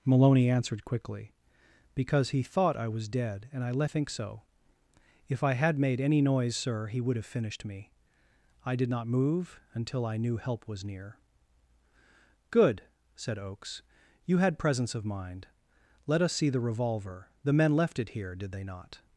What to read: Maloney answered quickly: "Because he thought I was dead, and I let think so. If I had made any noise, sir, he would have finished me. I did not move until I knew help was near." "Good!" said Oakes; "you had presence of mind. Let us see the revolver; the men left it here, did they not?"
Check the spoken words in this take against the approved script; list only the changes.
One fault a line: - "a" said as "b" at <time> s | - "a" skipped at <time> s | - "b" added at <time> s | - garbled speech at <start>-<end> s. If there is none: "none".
none